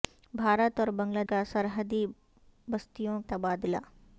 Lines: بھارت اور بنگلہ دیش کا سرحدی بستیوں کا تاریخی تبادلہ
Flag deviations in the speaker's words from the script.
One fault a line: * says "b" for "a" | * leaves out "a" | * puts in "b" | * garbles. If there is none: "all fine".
* leaves out "دیش"
* leaves out "کا تاریخی"